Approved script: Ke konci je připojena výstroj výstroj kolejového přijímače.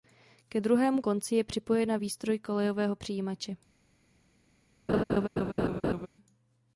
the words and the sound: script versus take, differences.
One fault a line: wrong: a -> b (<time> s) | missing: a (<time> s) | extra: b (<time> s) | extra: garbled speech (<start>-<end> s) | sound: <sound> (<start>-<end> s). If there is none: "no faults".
extra: druhému (0.6 s)
missing: výstroj (2.4 s)
sound: laugh (4.9-6.1 s)